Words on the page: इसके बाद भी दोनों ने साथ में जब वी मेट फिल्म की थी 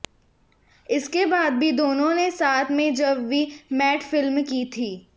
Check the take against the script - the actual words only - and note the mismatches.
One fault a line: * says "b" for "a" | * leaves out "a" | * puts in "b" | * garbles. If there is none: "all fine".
all fine